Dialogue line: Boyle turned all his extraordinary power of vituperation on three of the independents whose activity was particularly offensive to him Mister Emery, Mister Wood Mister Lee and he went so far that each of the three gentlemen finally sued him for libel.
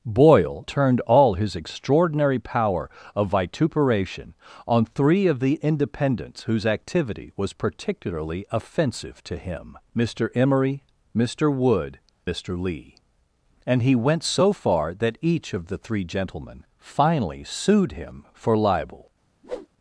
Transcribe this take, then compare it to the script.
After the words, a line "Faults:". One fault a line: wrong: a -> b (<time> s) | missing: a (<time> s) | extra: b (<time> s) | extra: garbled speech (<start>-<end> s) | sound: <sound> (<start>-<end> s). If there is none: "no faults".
Boyle turned all his extraordinary power of vituperation on three of the independents whose activity was particularly offensive to him Mister Emery, Mister Wood Mister Lee and he went so far that each of the three gentlemen finally sued him for libel.
Faults:
sound: whoosh (19.4-19.7 s)